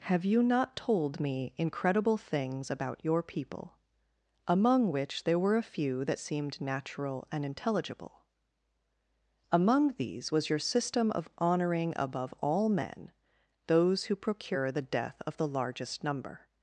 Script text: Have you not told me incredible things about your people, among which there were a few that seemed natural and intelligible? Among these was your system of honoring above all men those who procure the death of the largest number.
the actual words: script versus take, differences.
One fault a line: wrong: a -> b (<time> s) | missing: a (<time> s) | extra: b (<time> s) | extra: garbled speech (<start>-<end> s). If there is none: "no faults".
no faults